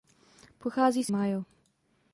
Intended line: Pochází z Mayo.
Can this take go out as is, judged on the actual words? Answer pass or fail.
pass